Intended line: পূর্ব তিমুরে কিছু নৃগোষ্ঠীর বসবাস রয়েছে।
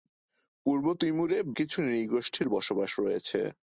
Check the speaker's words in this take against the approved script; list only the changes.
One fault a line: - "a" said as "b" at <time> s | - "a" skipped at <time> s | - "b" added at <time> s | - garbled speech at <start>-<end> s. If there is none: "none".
none